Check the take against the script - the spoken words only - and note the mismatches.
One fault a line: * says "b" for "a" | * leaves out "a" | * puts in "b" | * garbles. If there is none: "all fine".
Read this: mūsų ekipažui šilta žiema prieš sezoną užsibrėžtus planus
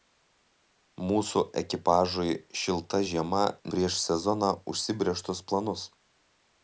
all fine